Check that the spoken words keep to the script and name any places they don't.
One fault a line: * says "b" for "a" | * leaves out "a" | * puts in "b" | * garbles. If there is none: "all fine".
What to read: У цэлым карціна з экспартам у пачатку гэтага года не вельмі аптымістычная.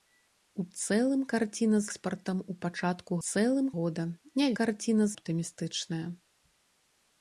* leaves out "з"
* says "цэлым" for "гэтага"
* says "карціна" for "вельмі"